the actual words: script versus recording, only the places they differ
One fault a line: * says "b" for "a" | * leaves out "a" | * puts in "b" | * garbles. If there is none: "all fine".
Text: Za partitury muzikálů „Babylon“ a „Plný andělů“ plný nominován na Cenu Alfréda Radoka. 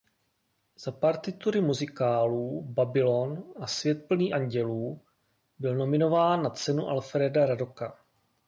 * puts in "Svět"
* says "byl" for "plný"